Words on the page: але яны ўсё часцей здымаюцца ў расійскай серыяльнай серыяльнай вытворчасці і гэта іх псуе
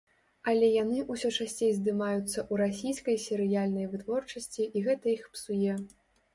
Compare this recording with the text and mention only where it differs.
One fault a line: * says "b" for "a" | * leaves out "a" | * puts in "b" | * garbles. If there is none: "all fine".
* leaves out "серыяльнай"